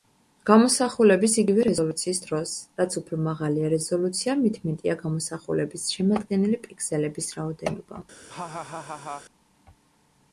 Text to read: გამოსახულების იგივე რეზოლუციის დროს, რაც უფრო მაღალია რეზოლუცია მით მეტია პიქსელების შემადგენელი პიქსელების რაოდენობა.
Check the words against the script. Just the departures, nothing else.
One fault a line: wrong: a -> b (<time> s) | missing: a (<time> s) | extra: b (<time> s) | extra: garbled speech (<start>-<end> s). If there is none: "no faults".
wrong: პიქსელების -> გამოსახულების (5.0 s)